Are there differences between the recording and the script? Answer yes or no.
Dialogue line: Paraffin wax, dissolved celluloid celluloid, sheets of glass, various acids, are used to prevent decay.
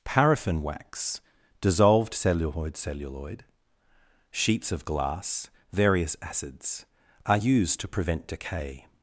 no